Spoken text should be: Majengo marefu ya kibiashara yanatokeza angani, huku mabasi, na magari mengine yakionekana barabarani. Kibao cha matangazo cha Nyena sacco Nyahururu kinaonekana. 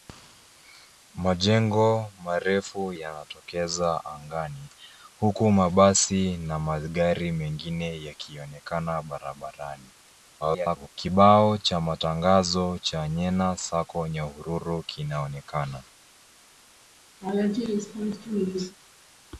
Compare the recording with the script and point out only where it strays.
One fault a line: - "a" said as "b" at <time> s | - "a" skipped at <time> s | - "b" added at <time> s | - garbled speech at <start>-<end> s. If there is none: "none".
- "ya kibiashara" skipped at 2.9 s
- garbled speech at 10.4-10.9 s